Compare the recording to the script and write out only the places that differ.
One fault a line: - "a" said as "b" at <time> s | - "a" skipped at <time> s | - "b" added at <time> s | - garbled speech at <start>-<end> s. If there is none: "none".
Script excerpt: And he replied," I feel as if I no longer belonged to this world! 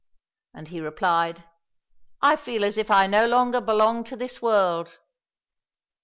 none